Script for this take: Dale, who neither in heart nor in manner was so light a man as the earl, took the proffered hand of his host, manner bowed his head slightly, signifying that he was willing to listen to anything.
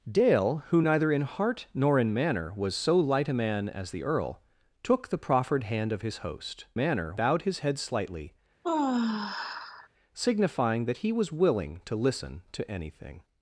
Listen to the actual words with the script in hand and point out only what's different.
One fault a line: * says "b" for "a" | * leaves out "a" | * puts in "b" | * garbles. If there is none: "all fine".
all fine